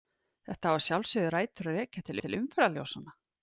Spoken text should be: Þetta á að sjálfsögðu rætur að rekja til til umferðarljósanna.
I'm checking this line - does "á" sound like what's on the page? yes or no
yes